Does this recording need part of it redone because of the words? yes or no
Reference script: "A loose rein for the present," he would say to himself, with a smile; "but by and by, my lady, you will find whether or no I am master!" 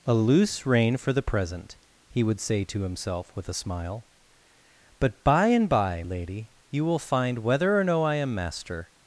yes